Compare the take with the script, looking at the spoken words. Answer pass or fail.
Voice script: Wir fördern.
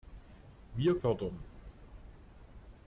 pass